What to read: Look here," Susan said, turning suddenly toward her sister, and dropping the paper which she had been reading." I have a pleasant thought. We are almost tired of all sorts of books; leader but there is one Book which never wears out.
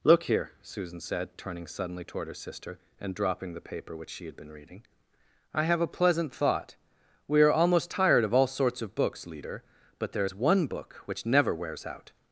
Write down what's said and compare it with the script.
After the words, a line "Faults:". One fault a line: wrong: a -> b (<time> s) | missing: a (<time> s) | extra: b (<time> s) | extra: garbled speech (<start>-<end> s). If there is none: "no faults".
Look here," Susan said, turning suddenly toward her sister, and dropping the paper which she had been reading." I have a pleasant thought. We are almost tired of all sorts of books; leader but there is one Book which never wears out.
Faults:
no faults